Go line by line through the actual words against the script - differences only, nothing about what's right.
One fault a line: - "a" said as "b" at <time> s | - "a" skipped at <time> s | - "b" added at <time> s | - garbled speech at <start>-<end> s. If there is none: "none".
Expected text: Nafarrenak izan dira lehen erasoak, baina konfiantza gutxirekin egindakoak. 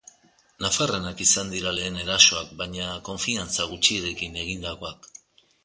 none